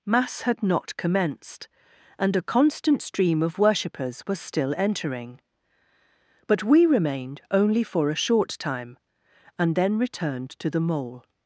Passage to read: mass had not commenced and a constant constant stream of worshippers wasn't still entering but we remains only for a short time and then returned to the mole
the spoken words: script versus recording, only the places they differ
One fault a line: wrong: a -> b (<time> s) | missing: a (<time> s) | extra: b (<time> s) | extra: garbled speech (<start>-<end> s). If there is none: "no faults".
missing: constant (3.0 s)
wrong: wasn't -> was (4.3 s)
wrong: remains -> remained (6.8 s)